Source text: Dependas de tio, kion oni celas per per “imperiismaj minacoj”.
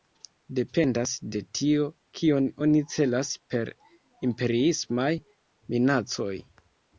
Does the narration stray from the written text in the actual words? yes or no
yes